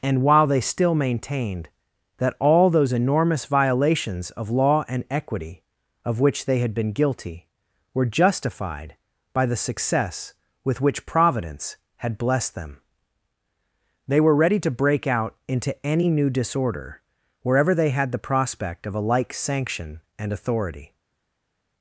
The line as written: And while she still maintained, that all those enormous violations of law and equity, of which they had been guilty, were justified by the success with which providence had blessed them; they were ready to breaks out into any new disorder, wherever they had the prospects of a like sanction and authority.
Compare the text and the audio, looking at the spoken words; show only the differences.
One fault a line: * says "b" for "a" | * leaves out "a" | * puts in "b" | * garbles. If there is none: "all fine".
* says "they" for "she"
* says "break" for "breaks"
* says "prospect" for "prospects"